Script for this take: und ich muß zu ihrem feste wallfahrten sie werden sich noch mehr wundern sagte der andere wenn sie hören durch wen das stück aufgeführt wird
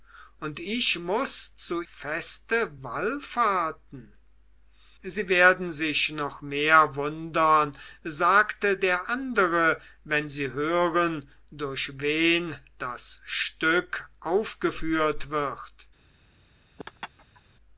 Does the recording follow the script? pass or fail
fail